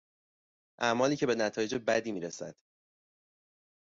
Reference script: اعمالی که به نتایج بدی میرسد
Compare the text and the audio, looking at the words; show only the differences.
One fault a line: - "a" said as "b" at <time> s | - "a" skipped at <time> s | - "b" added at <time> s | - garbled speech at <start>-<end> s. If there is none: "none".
none